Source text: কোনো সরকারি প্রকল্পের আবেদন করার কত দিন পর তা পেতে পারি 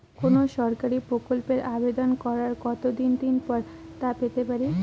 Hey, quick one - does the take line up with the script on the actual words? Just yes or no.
no